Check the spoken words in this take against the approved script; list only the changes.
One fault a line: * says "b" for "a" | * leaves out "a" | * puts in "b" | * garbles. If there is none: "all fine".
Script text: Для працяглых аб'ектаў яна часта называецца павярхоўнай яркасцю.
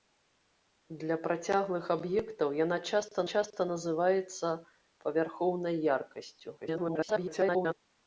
* puts in "часта"
* garbles